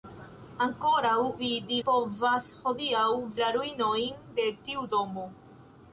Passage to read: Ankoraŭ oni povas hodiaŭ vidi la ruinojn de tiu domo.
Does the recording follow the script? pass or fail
fail